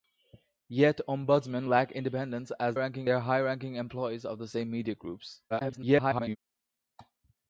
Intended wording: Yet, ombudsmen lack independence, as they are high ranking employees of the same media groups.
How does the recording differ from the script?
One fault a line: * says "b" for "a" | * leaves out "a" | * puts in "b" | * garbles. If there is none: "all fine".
* says "ranking" for "they"
* garbles